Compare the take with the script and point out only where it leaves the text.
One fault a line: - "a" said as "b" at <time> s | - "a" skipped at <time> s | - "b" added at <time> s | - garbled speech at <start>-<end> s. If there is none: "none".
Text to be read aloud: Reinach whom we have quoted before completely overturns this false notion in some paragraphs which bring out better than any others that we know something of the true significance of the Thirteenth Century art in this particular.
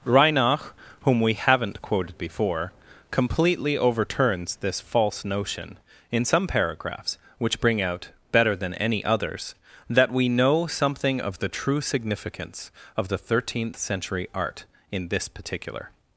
- "have" said as "haven't" at 1.3 s